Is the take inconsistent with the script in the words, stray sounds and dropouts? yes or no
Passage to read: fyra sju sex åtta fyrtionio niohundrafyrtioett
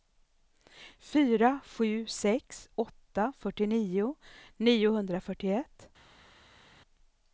no